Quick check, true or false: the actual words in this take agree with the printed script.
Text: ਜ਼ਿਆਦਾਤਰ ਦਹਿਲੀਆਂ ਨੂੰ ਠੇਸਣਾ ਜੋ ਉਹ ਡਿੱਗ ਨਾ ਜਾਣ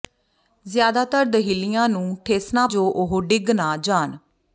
true